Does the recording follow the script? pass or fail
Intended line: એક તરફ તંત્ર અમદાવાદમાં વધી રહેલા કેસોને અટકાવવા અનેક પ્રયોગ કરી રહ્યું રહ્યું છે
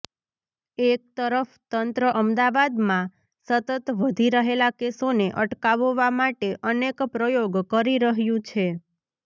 fail